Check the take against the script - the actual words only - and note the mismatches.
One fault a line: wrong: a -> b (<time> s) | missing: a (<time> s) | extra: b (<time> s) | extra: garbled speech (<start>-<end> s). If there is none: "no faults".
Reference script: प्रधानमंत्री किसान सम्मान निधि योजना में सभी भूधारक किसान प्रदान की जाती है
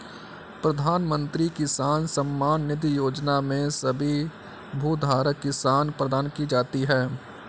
no faults